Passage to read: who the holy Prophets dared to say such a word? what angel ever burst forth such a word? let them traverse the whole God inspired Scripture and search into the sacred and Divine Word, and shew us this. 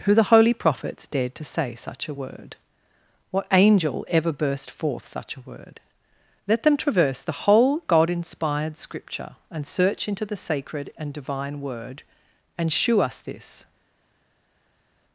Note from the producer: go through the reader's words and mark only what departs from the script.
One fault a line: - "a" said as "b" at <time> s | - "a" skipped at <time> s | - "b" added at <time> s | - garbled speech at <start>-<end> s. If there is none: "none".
none